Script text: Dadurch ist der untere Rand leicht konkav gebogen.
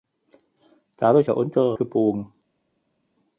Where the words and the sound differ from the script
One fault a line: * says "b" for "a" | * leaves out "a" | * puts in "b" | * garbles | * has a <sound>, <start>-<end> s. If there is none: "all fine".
* leaves out "ist"
* leaves out "Rand leicht konkav"